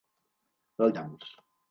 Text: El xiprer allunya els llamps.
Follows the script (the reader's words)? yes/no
no